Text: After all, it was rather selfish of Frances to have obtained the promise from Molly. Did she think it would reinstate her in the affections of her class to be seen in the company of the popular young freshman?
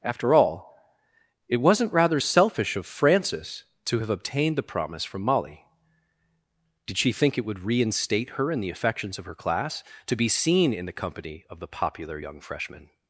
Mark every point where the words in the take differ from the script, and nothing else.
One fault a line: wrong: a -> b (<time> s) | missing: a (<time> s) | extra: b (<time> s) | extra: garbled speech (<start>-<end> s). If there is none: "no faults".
wrong: was -> wasn't (1.6 s)